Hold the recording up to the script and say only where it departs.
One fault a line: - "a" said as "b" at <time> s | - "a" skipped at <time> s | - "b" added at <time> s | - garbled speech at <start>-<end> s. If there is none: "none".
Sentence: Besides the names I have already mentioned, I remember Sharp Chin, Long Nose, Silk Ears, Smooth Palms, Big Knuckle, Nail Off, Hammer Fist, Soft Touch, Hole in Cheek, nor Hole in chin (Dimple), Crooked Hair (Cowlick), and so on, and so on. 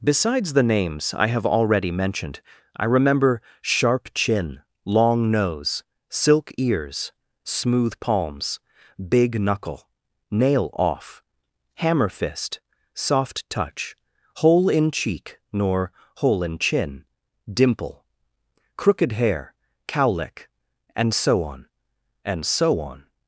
none